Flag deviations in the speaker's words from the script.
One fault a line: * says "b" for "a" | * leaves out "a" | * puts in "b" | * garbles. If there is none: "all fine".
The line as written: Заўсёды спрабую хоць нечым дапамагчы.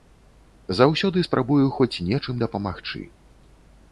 all fine